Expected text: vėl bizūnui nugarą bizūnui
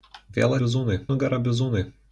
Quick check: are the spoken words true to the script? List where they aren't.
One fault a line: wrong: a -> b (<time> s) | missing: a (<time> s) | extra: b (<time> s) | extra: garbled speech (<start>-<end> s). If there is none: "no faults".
no faults